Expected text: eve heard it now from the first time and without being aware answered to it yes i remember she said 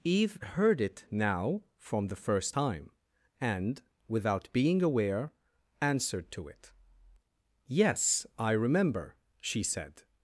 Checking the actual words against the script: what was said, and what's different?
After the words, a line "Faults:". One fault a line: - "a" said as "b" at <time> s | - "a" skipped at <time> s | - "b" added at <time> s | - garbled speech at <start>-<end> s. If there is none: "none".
eve heard it now from the first time and without being aware answered to it yes i remember she said
Faults:
none